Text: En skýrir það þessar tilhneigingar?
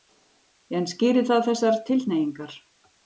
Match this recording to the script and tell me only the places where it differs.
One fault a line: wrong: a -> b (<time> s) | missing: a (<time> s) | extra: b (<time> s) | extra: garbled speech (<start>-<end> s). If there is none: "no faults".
no faults